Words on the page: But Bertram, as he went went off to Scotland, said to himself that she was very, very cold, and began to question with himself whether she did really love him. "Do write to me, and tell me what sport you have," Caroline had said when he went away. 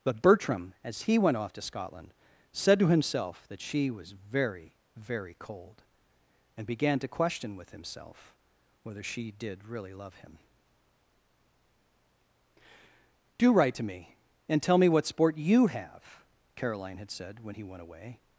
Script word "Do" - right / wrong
right